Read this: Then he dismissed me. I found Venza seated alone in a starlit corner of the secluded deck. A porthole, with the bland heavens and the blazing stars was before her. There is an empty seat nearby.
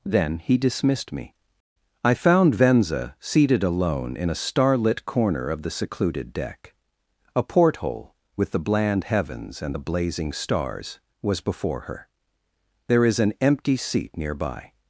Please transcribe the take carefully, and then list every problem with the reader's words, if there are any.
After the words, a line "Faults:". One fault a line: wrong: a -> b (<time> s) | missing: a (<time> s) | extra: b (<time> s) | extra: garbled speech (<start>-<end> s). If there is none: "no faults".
Then he dismissed me. I found Venza seated alone in a starlit corner of the secluded deck. A porthole, with the bland heavens and the blazing stars was before her. There is an empty seat nearby.
Faults:
no faults